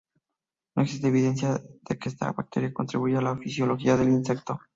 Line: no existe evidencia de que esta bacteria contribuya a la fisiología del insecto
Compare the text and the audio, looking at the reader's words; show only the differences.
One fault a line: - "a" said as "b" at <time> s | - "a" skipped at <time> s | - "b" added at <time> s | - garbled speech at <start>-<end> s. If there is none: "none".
none